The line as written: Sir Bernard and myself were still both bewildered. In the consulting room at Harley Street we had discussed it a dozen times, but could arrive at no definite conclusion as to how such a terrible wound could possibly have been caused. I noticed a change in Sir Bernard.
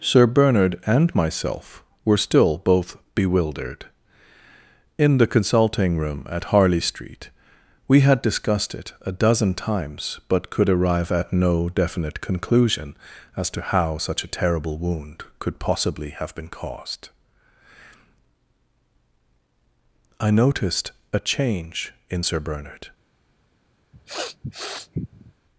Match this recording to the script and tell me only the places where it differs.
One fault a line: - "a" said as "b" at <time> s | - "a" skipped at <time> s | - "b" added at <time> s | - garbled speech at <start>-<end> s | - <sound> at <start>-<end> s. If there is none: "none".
- sniff at 23.9-25.3 s